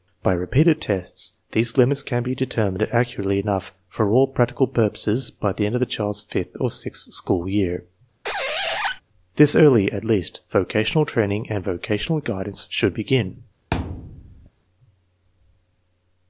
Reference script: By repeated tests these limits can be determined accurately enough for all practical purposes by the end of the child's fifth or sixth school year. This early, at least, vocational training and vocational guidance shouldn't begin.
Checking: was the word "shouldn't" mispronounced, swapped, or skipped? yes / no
yes